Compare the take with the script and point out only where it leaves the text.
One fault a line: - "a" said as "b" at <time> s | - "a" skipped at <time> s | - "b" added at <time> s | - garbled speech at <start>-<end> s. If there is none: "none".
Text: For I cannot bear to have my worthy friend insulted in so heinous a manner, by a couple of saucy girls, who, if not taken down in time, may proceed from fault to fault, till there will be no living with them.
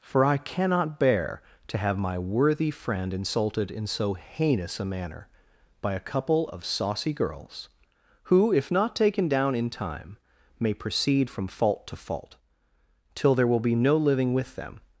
none